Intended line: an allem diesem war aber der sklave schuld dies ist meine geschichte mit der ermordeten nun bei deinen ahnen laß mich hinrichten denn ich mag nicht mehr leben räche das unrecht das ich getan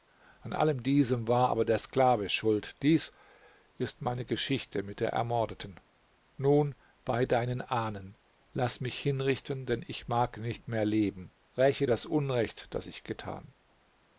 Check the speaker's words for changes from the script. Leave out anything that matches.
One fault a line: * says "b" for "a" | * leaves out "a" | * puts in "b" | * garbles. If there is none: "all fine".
all fine